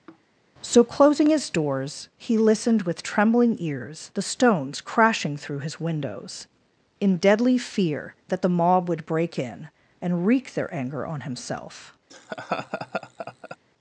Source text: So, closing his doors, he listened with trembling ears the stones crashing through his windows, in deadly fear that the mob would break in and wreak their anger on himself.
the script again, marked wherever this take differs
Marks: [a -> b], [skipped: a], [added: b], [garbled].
So, closing his doors, he listened with trembling ears the stones crashing through his windows, in deadly fear that the mob would break in and wreak their anger on himself.